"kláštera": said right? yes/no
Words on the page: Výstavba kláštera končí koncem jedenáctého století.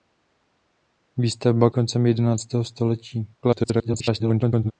no